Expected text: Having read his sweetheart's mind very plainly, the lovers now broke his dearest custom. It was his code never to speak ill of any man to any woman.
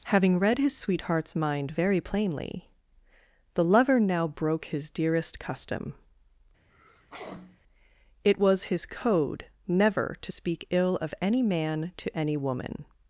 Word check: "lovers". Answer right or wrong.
wrong